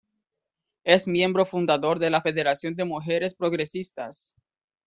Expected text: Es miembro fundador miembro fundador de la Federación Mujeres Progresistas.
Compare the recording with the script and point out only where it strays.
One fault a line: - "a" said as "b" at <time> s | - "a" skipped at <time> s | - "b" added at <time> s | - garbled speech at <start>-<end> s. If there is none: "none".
- "miembro fundador" skipped at 2.0 s
- "de" added at 2.7 s